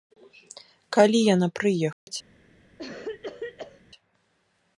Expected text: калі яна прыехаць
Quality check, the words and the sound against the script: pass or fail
fail